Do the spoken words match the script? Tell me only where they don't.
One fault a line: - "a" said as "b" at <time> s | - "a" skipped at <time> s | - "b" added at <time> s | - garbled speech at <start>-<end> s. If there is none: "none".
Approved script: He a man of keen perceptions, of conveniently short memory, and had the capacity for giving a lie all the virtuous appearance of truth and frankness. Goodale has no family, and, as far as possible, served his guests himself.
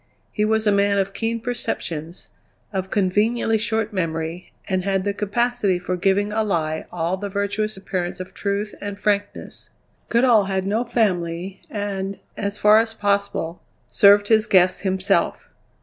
- "was" added at 0.5 s
- "has" said as "had" at 10.4 s